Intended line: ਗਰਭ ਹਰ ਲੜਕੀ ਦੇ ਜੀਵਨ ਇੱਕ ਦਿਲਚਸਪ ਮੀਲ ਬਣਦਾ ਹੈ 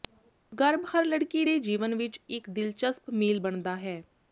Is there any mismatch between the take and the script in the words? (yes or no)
yes